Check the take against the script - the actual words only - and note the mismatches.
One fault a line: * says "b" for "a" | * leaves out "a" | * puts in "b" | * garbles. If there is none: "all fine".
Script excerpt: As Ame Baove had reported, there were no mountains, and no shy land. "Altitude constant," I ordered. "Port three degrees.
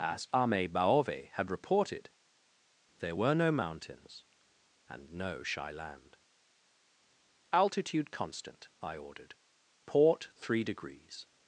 all fine